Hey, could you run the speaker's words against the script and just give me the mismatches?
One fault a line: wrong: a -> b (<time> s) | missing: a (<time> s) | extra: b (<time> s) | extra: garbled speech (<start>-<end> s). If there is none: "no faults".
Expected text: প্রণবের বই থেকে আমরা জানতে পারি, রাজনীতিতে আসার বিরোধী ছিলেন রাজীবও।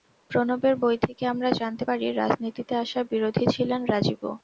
no faults